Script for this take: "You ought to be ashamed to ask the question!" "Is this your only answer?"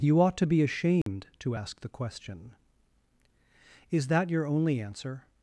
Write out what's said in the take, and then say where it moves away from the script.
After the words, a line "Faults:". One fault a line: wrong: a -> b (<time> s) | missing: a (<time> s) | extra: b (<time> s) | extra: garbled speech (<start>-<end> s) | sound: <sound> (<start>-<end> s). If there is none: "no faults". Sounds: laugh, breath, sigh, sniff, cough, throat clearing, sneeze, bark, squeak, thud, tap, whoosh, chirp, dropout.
"You ought to be ashamed to ask the question!" "Is that your only answer?"
Faults:
sound: dropout (1.0-1.1 s)
wrong: this -> that (4.1 s)